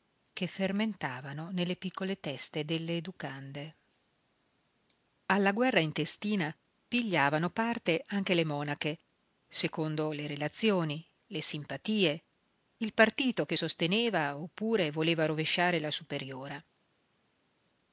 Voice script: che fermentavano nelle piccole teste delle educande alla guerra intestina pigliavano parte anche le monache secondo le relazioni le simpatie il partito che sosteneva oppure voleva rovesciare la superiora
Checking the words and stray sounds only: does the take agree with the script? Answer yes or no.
yes